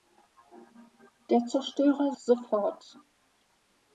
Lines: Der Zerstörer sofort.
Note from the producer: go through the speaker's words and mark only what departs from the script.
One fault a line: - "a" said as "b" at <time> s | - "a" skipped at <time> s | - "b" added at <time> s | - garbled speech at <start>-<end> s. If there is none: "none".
none